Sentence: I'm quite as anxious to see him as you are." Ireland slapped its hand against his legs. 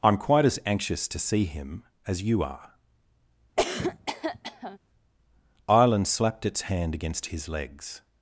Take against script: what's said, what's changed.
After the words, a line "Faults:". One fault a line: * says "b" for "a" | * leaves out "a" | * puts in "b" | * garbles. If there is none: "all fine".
I'm quite as anxious to see him as you are." Ireland slapped its hand against his legs.
Faults:
all fine